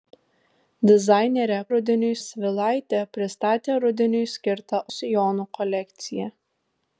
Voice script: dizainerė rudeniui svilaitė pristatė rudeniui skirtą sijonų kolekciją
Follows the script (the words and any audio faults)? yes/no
yes